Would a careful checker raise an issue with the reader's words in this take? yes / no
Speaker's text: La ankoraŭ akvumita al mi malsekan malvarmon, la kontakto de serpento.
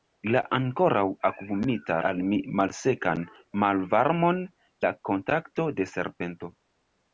no